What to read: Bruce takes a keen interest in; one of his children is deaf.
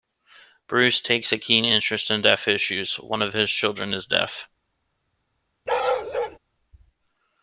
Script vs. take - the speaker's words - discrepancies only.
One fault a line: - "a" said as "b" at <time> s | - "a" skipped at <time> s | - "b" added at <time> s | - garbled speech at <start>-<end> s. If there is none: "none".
- "deaf issues" added at 2.2 s